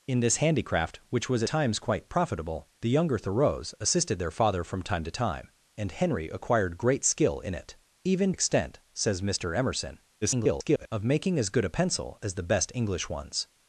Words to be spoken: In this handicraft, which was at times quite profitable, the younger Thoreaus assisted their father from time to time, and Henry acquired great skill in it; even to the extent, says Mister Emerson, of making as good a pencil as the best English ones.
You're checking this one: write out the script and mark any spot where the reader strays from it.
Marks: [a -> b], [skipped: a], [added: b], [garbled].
In this handicraft, which was [skipped: at] times quite profitable, the younger Thoreaus assisted their father from time to time, and Henry acquired great skill in it; even [skipped: to the] extent, says Mister Emerson, [garbled] of making as good a pencil as the best English ones.